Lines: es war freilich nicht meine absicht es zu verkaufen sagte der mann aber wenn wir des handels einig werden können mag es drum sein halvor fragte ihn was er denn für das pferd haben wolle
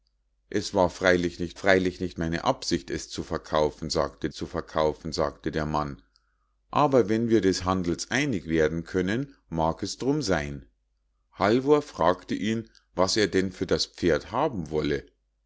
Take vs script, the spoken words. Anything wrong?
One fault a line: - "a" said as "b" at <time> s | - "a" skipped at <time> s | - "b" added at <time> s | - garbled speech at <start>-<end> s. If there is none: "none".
- "freilich nicht" added at 1.5 s
- "zu verkaufen sagte" added at 4.3 s